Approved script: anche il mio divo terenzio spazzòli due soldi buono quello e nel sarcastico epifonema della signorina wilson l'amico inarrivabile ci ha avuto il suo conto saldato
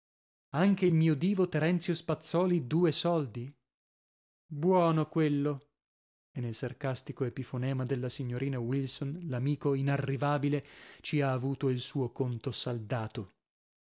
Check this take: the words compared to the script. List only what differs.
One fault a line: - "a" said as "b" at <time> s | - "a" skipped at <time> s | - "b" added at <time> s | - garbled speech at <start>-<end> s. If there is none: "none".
none